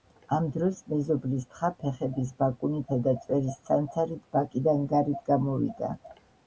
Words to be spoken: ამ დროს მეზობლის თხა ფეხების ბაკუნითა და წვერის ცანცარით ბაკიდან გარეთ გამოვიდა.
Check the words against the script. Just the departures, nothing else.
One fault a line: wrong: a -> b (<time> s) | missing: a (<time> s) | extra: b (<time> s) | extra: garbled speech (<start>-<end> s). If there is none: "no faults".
no faults